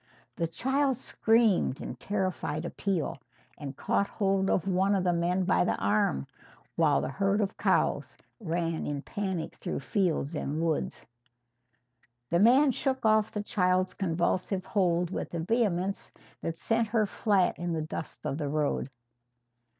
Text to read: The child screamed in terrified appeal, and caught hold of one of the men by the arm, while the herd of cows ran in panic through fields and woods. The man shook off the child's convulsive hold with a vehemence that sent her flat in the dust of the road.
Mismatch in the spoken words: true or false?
false